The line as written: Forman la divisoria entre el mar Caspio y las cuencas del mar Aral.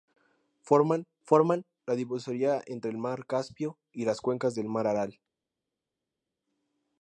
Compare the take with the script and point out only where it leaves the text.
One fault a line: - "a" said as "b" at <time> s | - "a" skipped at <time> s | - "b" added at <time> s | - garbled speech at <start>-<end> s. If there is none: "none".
- "forman" added at 1.2 s